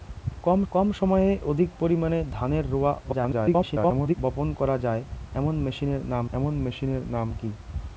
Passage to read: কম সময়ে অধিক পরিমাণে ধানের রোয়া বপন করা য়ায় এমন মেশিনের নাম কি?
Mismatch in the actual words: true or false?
true